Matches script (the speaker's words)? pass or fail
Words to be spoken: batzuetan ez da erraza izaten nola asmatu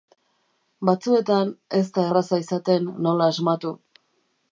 pass